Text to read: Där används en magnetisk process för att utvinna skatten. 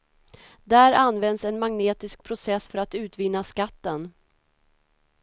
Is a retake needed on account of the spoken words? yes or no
no